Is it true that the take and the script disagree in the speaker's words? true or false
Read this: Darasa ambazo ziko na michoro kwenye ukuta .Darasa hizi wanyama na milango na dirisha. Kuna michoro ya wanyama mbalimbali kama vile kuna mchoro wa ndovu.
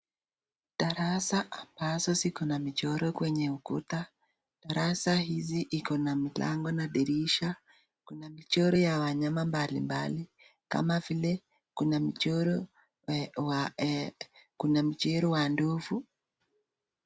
true